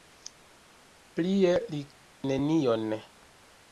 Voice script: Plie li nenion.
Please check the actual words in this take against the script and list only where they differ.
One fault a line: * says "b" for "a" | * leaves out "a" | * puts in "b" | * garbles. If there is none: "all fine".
all fine